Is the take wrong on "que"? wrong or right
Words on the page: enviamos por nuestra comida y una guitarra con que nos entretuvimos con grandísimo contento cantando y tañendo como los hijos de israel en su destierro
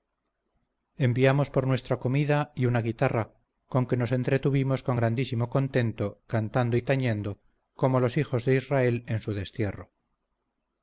right